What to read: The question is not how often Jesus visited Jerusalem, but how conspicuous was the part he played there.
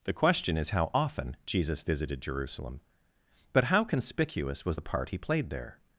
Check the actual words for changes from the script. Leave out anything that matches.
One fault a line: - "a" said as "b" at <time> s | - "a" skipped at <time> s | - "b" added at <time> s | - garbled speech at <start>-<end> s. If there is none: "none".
- "not" skipped at 0.7 s